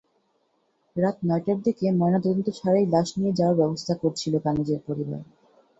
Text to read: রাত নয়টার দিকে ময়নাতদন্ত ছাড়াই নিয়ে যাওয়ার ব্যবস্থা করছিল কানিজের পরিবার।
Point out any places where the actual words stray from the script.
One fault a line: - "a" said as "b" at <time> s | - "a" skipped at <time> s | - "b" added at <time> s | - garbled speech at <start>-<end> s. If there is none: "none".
- "লাশ" added at 2.9 s